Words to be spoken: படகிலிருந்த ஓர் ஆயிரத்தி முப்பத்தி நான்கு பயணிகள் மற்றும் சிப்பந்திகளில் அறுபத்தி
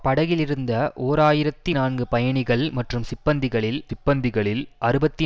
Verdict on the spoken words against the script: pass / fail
fail